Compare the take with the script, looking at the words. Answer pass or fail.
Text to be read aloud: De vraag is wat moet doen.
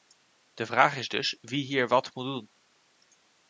fail